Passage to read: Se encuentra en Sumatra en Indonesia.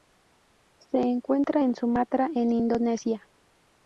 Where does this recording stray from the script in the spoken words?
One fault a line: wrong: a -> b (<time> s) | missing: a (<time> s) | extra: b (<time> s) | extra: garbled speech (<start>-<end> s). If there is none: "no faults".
no faults